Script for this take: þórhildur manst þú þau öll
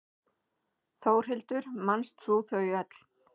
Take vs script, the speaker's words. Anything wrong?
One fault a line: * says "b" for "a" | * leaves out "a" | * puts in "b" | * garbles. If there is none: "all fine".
all fine